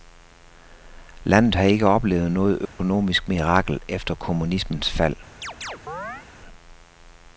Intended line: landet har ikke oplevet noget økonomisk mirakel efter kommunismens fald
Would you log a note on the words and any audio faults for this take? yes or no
yes